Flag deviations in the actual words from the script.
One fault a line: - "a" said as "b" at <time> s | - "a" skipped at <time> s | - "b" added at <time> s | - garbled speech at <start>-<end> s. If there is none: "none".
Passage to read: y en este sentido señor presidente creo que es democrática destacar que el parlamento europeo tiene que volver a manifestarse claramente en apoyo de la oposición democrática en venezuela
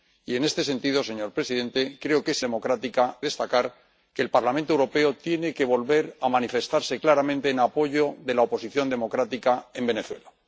none